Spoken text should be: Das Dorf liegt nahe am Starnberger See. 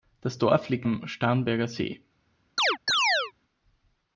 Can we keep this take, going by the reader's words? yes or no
no